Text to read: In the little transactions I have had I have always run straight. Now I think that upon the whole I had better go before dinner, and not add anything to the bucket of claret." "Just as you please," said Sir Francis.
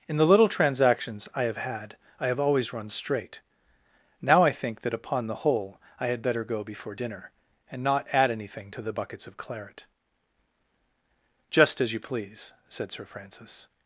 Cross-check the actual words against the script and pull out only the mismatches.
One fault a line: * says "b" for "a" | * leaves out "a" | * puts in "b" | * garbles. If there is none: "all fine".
* says "buckets" for "bucket"